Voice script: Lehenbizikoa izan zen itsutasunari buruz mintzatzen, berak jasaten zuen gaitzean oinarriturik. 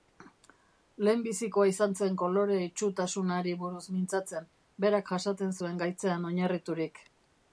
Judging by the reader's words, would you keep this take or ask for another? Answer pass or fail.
fail